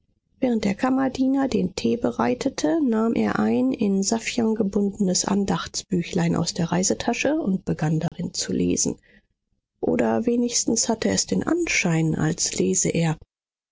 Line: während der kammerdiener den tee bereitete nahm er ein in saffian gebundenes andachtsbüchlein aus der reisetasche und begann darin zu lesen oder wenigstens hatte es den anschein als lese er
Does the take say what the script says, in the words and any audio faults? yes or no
no